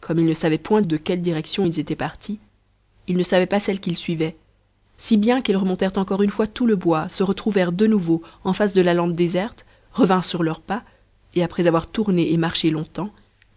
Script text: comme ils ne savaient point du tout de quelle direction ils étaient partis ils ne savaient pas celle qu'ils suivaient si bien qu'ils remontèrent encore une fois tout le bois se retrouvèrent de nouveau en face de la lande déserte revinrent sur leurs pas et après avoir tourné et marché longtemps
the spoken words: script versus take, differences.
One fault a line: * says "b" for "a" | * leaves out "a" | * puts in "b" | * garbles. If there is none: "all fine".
* leaves out "du tout"